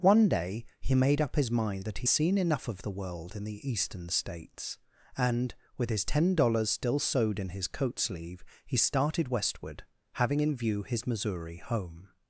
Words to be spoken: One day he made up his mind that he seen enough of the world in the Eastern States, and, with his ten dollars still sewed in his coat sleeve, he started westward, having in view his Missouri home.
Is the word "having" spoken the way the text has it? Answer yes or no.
yes